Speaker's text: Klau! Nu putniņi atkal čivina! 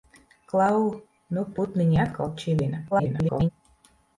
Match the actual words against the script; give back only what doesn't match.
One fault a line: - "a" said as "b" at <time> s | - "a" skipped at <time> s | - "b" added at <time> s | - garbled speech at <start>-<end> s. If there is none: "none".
- garbled speech at 2.9-3.5 s